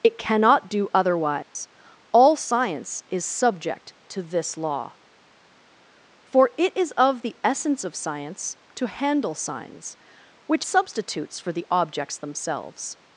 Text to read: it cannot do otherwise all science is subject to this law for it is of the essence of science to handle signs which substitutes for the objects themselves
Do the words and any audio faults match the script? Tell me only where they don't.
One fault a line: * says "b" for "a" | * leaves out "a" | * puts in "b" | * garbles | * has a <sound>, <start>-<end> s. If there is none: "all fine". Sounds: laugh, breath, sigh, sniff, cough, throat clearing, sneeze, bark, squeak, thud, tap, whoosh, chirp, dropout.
* has a dropout, 1.4-1.6 s